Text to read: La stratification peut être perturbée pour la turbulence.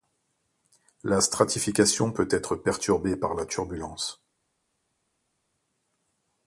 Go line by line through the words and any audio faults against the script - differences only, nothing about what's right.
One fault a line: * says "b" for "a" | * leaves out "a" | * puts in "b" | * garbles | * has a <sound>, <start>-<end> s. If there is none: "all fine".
* says "par" for "pour"